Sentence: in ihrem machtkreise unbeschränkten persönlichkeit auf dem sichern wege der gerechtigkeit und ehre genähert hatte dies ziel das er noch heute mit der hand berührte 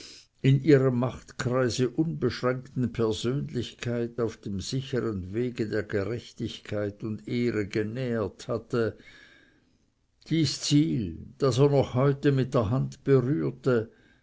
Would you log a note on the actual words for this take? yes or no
no